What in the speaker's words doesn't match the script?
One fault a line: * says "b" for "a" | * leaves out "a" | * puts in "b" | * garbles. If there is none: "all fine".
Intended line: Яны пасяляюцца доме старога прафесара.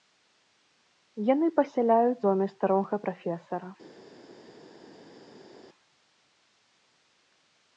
all fine